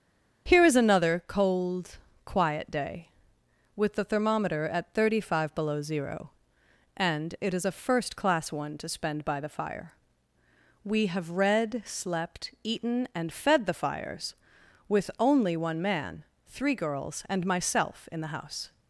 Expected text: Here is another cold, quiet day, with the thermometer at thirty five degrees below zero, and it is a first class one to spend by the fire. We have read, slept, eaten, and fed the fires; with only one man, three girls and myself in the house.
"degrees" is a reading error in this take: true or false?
true